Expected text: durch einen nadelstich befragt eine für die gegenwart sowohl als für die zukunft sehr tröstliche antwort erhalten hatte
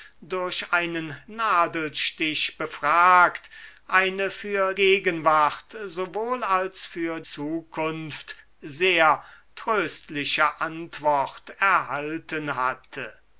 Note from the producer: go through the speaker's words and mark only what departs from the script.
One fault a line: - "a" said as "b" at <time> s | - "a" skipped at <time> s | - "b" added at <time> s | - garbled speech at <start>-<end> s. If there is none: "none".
- "die" skipped at 4.7 s
- "die" skipped at 7.2 s